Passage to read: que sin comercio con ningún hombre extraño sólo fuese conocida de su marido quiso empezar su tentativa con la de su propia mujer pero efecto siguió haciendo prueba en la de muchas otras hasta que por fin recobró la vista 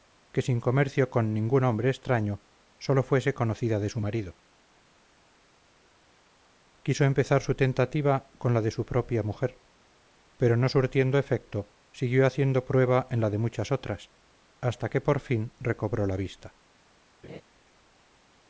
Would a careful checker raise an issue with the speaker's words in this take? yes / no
yes